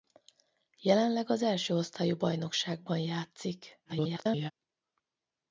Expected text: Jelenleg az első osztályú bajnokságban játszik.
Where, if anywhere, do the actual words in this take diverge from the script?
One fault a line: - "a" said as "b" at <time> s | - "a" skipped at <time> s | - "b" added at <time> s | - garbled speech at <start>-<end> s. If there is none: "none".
- garbled speech at 3.8-4.5 s